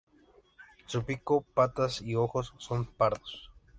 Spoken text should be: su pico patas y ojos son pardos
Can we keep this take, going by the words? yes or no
yes